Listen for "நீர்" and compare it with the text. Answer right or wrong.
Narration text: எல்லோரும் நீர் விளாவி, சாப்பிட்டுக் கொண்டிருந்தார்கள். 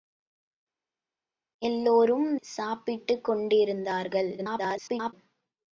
wrong